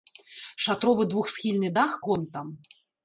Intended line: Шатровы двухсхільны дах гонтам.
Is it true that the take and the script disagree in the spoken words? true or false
false